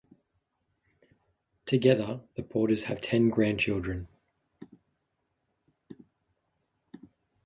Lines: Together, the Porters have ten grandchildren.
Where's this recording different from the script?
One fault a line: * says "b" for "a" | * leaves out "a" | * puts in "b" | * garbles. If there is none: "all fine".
all fine